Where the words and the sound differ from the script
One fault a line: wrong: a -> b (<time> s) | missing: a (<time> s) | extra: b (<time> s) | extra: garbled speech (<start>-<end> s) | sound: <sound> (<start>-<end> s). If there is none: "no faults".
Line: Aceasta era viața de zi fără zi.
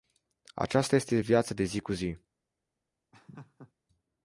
wrong: era -> este (0.9 s)
wrong: fără -> cu (1.8 s)
sound: laugh (3.1-3.7 s)